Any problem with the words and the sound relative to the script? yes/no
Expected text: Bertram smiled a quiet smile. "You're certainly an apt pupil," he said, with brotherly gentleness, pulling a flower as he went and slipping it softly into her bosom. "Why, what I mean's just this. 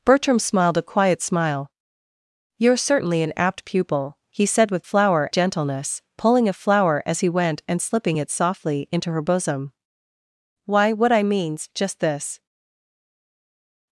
yes